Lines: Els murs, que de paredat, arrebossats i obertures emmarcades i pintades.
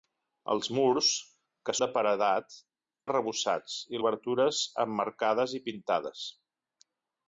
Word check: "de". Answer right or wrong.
right